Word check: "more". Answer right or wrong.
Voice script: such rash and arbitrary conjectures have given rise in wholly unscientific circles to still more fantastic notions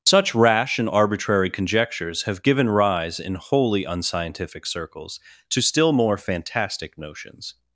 right